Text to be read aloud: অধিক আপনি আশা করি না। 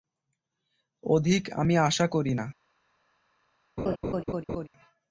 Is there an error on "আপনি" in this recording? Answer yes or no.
yes